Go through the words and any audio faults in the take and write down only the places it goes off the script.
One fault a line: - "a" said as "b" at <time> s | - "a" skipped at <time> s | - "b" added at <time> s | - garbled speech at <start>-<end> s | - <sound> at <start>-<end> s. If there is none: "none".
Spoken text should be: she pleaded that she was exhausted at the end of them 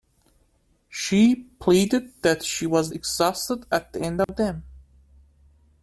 - dropout at 4.2-4.3 s